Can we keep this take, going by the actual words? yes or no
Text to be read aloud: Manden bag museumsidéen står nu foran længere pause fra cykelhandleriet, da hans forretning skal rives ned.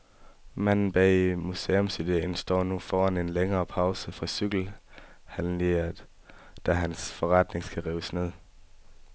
no